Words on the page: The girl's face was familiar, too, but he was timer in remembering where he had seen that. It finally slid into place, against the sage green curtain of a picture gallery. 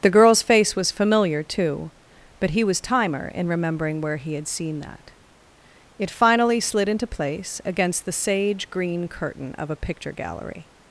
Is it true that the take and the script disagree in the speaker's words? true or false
false